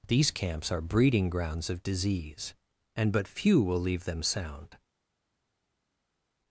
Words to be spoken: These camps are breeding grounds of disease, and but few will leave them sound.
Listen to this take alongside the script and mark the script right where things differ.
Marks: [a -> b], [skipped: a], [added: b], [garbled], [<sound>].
These camps are breeding grounds of disease, and but few will leave them sound.